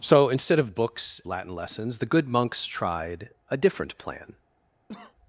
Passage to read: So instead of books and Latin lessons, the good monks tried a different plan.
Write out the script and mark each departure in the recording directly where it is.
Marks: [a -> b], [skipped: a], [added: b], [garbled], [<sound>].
So instead of books [skipped: and] Latin lessons, the good monks tried a different plan. [cough]